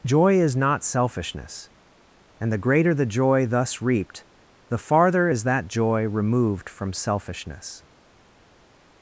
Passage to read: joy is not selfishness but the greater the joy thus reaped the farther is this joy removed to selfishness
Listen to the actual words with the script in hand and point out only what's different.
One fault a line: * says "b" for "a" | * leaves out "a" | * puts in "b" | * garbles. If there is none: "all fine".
* says "and" for "but"
* says "that" for "this"
* says "from" for "to"